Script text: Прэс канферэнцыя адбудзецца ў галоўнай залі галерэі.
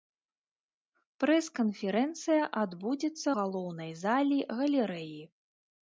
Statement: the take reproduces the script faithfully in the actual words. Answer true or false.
false